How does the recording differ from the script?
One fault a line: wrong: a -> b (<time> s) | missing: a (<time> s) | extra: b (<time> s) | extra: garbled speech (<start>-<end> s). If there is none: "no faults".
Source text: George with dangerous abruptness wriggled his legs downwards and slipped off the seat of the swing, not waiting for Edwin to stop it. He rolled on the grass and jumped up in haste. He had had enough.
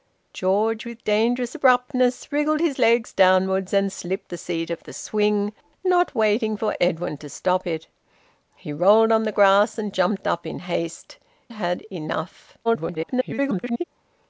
missing: off (4.3 s)
missing: He had (11.2 s)
extra: garbled speech (12.6-13.8 s)